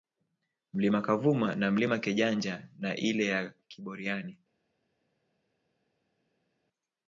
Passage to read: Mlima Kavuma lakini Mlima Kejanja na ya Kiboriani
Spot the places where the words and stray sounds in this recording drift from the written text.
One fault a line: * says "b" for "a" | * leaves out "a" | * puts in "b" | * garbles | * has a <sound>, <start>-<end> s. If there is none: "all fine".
* says "na" for "lakini"
* puts in "ile"